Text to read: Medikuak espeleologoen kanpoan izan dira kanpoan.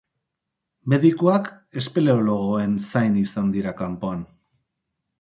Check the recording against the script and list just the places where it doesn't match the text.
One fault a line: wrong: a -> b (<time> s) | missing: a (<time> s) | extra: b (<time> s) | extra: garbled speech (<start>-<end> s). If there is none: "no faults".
wrong: kanpoan -> zain (2.9 s)